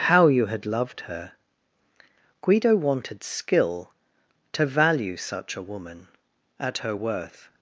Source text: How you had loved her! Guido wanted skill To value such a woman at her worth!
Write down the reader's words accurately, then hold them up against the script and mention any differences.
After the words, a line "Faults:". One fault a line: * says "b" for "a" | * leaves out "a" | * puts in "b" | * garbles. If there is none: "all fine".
How you had loved her! Guido wanted skill To value such a woman at her worth!
Faults:
all fine